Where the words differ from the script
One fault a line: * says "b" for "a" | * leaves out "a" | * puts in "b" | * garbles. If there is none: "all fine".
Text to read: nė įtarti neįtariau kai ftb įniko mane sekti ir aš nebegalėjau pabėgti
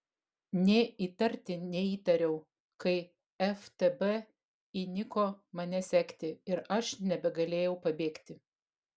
all fine